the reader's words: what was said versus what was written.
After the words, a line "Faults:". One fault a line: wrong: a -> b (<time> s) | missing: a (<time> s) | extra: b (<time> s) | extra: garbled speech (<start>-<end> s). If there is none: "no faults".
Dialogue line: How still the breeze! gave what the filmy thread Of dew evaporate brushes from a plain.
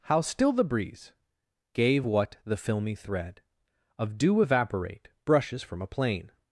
How still the breeze! gave what the filmy thread Of dew evaporate brushes from a plain.
Faults:
no faults